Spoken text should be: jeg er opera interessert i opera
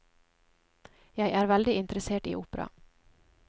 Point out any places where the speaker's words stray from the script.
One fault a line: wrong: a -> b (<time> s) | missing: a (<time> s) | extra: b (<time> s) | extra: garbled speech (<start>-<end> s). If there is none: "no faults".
wrong: opera -> veldig (1.5 s)